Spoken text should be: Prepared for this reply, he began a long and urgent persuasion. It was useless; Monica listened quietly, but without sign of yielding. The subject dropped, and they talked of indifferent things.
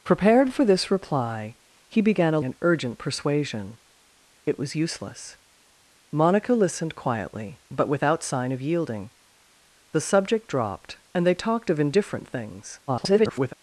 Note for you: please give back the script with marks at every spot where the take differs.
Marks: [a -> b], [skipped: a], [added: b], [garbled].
Prepared for this reply, he began a [skipped: long] and urgent persuasion. It was useless; Monica listened quietly, but without sign of yielding. The subject dropped, and they talked of indifferent things. [garbled]